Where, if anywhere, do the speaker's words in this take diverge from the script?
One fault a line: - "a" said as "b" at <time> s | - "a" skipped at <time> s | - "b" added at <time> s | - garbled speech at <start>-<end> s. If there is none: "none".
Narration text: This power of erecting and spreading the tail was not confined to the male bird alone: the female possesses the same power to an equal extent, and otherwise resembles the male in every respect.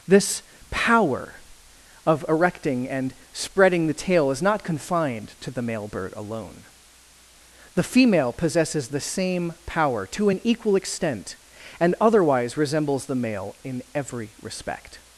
- "was" said as "is" at 4.3 s